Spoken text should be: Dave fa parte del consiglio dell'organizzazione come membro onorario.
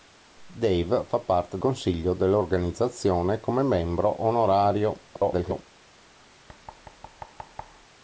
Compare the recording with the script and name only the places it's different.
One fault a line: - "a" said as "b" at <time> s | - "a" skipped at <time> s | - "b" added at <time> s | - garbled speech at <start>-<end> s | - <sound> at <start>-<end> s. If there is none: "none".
- "del" skipped at 1.6 s
- garbled speech at 5.1-5.7 s
- thud at 6.5-7.9 s